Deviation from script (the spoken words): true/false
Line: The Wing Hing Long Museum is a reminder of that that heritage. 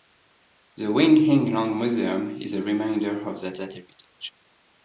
false